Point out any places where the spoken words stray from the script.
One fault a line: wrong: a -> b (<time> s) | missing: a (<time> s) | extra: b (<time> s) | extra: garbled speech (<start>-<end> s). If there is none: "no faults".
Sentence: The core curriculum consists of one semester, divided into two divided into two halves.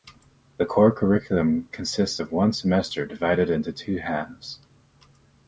missing: divided into two (4.0 s)